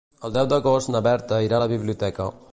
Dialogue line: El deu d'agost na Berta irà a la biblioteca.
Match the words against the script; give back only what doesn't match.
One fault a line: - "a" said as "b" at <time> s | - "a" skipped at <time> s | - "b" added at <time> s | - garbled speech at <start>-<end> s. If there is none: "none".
none